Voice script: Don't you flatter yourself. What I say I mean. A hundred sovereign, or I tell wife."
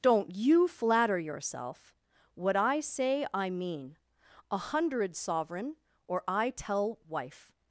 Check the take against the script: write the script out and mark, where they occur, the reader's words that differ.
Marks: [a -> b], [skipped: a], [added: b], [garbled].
Don't you flatter yourself. What I say I mean. A hundred sovereign, or I tell wife."